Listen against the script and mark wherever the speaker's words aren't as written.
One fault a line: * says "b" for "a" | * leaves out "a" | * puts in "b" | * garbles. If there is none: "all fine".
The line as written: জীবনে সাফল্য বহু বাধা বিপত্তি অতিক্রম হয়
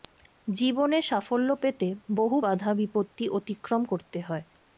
* puts in "পেতে"
* puts in "করতে"